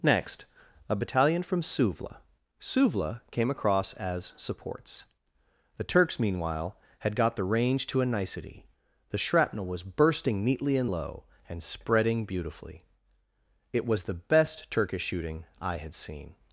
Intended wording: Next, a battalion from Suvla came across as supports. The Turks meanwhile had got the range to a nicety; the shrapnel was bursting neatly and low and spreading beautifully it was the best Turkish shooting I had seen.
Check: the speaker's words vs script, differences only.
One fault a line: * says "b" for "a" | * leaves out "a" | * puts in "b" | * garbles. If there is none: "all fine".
* puts in "Suvla"